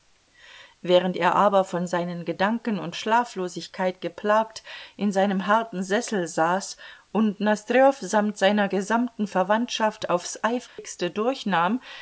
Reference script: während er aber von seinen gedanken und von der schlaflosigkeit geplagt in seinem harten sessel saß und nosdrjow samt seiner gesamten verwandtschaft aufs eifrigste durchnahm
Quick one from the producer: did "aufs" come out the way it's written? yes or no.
yes